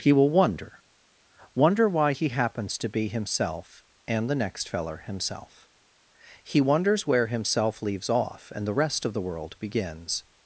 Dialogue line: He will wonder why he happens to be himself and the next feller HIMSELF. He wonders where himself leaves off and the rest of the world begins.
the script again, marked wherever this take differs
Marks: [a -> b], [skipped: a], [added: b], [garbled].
He will wonder [added: wonder] why he happens to be himself and the next feller HIMSELF. He wonders where himself leaves off and the rest of the world begins.